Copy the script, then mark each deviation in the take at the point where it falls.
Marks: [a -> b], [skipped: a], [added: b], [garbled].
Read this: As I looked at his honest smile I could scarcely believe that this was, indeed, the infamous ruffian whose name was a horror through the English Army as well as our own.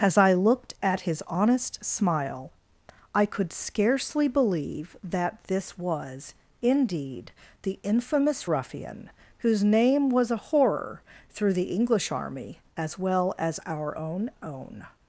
As I looked at his honest smile I could scarcely believe that this was, indeed, the infamous ruffian whose name was a horror through the English Army as well as our own. [added: own]